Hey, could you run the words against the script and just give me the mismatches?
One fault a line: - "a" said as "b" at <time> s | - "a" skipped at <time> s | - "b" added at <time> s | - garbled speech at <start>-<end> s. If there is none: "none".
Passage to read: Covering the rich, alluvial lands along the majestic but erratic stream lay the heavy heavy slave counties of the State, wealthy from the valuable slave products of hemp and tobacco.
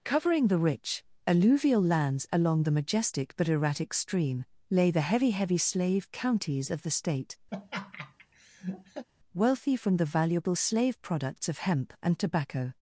none